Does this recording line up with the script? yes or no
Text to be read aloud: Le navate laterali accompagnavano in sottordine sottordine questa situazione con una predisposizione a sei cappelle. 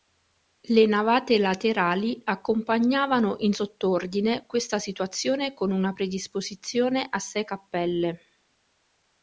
no